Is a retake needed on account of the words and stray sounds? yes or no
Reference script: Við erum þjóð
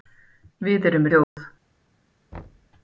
yes